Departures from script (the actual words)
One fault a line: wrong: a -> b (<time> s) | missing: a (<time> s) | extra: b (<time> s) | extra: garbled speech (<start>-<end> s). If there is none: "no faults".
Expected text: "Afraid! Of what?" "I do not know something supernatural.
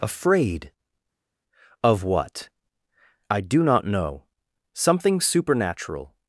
no faults